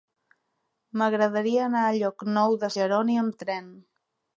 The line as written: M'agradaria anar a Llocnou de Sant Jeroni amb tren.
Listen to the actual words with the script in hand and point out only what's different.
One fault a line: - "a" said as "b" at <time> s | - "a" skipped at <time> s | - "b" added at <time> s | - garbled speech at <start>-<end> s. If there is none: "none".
- "Sant" skipped at 2.7 s